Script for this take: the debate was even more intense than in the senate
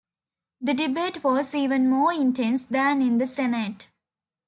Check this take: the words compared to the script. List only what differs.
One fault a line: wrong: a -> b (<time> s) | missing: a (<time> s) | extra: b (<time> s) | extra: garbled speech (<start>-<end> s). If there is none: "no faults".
no faults